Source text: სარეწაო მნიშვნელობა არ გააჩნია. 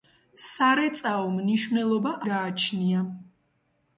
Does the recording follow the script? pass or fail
fail